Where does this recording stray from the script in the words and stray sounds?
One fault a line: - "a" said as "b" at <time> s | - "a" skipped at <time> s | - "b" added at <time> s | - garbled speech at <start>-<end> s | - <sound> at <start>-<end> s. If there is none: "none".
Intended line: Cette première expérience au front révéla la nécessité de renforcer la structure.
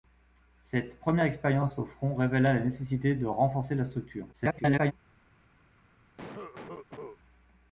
- garbled speech at 4.3-4.9 s
- cough at 6.2-7.2 s